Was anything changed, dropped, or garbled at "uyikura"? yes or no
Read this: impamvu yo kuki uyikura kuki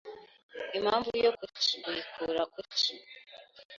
no